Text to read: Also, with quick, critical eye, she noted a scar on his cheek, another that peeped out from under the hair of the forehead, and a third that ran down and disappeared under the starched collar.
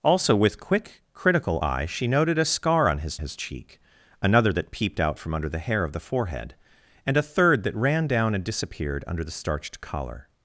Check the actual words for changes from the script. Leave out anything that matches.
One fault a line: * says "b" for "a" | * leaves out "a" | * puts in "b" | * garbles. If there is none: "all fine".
* puts in "his"